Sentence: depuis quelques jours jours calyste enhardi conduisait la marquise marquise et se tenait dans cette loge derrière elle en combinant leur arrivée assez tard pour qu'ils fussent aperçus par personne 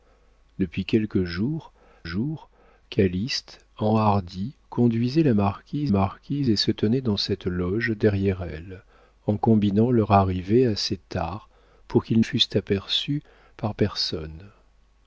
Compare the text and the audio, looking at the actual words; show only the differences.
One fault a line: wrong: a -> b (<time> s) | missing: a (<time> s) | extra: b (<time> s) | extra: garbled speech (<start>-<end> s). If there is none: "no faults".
no faults